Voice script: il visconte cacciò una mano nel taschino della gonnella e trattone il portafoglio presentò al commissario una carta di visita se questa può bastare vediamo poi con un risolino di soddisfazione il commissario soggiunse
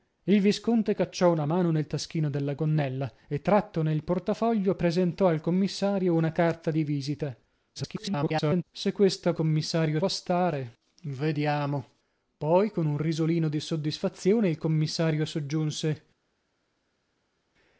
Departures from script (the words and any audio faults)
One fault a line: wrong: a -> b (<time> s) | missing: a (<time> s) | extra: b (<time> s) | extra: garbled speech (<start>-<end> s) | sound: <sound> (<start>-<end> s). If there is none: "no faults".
extra: garbled speech (7.8-8.6 s)
wrong: può -> commissario (9.3 s)